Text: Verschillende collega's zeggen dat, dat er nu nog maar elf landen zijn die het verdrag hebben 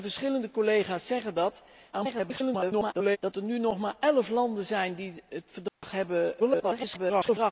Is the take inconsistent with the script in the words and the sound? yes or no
yes